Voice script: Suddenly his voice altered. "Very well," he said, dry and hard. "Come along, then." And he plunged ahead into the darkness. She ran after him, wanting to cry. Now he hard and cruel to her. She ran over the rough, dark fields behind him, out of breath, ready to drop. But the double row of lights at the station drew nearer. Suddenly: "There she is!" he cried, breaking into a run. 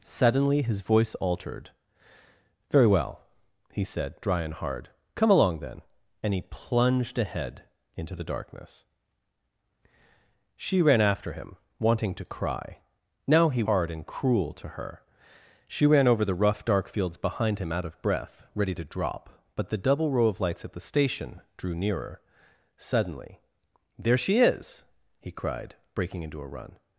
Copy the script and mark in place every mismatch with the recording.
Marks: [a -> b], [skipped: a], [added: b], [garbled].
Suddenly his voice altered. "Very well," he said, dry and hard. "Come along, then." And he plunged ahead into the darkness. She ran after him, wanting to cry. Now he hard and cruel to her. She ran over the rough, dark fields behind him, out of breath, ready to drop. But the double row of lights at the station drew nearer. Suddenly: "There she is!" he cried, breaking into a run.